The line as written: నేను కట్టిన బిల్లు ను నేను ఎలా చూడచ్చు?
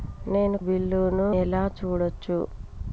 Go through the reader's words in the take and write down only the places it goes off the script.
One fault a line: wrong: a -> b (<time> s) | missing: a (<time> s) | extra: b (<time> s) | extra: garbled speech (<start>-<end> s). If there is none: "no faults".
missing: కట్టిన (0.6 s)
missing: నేను (1.3 s)